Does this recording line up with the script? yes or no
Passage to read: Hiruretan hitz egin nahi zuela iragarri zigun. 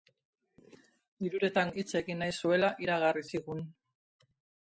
yes